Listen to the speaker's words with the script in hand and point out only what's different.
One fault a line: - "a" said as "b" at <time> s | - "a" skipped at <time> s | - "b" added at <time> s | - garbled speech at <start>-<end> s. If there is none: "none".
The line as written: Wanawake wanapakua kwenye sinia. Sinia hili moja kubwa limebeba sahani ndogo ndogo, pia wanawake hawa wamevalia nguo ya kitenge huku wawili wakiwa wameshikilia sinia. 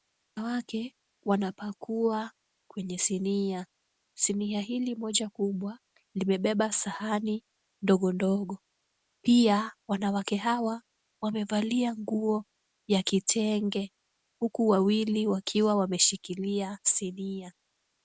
none